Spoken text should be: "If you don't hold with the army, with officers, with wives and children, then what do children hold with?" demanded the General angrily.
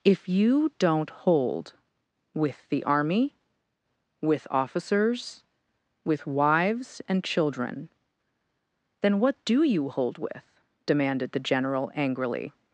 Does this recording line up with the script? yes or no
no